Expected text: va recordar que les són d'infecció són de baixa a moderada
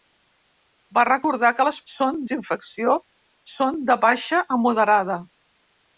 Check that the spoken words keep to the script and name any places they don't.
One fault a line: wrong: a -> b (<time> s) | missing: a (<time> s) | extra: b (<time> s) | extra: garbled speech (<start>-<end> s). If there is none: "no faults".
no faults